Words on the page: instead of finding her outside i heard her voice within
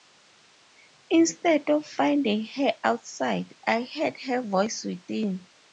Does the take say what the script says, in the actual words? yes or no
yes